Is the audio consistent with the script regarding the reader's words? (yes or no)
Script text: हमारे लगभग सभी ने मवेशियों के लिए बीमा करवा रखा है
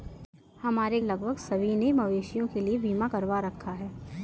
yes